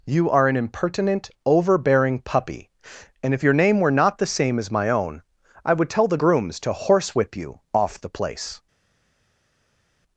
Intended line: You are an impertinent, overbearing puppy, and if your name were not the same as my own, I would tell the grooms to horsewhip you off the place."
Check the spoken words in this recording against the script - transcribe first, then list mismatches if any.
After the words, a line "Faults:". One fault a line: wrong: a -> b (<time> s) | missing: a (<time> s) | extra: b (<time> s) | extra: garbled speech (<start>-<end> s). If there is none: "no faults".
You are an impertinent, overbearing puppy, and if your name were not the same as my own, I would tell the grooms to horsewhip you off the place."
Faults:
no faults